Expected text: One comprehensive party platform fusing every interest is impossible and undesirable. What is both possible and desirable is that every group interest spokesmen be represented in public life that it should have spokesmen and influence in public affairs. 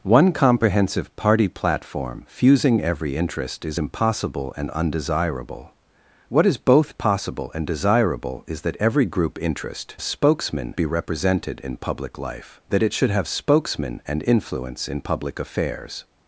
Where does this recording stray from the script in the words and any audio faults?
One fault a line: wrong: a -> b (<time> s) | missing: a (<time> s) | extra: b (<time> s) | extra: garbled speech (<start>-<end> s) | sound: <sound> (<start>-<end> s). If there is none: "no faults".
no faults